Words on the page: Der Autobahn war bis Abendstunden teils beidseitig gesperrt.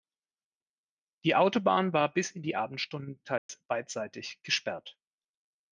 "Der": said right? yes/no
no